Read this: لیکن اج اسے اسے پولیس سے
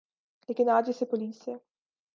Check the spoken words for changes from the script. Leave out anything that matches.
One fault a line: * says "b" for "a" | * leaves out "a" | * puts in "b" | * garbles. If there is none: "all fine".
* leaves out "اسے"